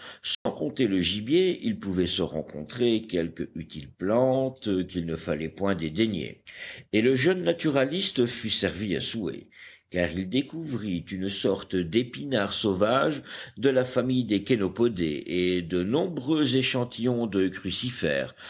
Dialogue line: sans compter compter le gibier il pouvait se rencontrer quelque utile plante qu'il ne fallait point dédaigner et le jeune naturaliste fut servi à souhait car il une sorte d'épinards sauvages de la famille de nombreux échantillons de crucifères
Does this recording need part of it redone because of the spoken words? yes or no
yes